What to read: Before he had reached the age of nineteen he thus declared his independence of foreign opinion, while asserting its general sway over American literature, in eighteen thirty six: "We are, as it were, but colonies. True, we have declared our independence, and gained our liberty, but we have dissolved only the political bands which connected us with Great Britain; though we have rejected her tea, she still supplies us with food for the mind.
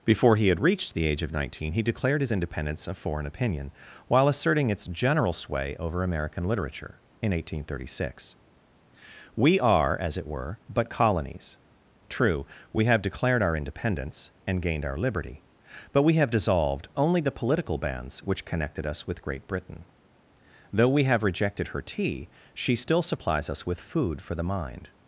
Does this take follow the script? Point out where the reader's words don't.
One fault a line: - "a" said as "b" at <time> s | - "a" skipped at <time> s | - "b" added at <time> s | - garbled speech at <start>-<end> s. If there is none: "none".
- "thus" skipped at 1.8 s